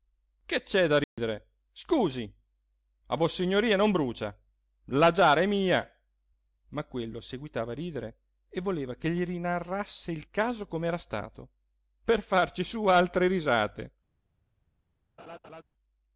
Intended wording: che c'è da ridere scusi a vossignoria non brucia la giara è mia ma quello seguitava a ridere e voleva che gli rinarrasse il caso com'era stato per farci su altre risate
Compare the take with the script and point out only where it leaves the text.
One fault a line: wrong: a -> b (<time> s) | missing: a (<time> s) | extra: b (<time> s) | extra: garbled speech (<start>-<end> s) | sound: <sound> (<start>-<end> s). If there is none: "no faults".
sound: dropout (1.0-1.2 s)
sound: laugh (15.2-15.6 s)